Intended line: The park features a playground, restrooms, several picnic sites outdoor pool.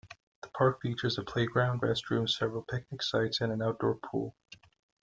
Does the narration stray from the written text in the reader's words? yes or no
yes